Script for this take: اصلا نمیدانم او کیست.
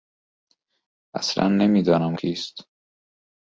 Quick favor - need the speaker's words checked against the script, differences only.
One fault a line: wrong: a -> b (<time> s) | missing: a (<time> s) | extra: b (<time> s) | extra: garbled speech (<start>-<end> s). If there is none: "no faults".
missing: او (2.2 s)